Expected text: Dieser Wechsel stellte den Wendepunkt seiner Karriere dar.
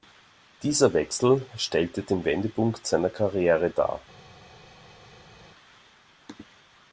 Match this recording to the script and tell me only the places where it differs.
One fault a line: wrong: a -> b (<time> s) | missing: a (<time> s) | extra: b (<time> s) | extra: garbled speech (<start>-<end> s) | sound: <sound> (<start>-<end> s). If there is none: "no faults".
no faults